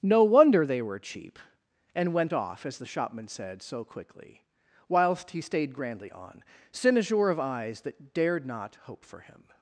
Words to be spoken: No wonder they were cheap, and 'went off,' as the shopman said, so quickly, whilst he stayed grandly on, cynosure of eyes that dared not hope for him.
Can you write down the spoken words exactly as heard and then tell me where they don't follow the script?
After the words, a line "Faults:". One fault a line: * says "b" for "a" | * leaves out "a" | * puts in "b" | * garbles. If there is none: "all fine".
No wonder they were cheap, and 'went off,' as the shopman said, so quickly, whilst he stayed grandly on, cynosure of eyes that dared not hope for him.
Faults:
all fine